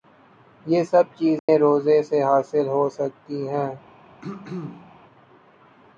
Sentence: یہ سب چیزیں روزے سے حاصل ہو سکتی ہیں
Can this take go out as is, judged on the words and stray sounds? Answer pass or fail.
fail